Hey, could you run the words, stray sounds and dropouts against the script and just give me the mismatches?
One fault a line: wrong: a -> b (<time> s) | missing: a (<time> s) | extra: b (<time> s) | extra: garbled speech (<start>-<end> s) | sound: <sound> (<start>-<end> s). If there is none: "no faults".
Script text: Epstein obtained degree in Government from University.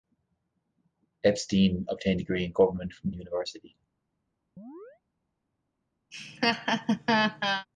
sound: chirp (4.6-5.0 s)
sound: laugh (6.1-7.7 s)